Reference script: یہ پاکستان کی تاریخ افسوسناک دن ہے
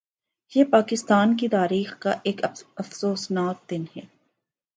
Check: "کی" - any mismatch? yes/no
no